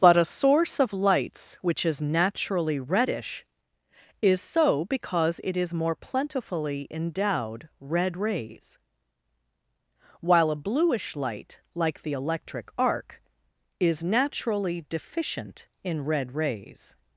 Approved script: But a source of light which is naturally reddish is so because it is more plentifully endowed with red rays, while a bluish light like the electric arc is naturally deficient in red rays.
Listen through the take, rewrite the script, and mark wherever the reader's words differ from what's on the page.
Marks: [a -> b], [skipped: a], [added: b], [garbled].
But a source of [light -> lights] which is naturally reddish is so because it is more plentifully endowed [skipped: with] red rays, while a bluish light like the electric arc is naturally deficient in red rays.